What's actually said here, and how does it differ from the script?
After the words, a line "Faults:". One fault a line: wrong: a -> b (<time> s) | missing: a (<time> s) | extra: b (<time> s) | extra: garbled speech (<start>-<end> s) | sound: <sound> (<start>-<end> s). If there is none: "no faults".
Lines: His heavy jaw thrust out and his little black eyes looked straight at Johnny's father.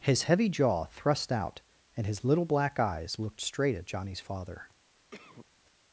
His heavy jaw thrust out and his little black eyes looked straight at Johnny's father.
Faults:
sound: cough (5.1-5.5 s)